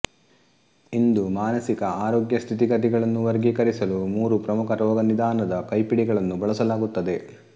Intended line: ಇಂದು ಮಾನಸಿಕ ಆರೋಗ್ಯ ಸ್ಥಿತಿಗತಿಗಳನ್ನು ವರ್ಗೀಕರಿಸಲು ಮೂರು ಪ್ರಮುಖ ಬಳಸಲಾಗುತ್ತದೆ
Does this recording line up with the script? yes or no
no